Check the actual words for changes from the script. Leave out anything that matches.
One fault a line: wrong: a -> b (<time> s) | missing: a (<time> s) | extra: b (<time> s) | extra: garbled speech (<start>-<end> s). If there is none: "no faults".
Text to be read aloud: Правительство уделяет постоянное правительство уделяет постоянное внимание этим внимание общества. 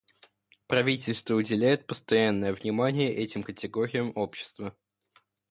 missing: правительство уделяет постоянное (2.5 s)
wrong: внимание -> категориям (3.4 s)